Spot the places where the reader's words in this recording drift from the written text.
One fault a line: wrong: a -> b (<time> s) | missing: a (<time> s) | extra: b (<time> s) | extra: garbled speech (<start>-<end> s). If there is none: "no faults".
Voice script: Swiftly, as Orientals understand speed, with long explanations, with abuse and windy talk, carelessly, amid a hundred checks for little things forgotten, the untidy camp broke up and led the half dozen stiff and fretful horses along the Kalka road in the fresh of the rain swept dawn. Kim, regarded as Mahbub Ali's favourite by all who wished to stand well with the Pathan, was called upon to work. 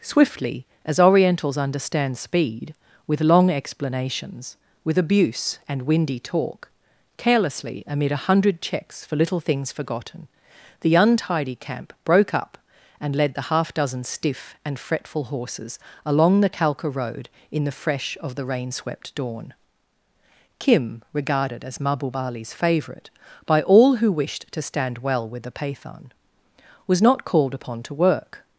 extra: not (27.0 s)